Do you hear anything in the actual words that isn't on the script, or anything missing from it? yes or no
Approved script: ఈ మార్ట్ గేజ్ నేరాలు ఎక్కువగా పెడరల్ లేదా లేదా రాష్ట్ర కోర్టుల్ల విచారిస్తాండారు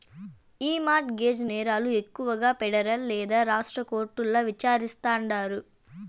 yes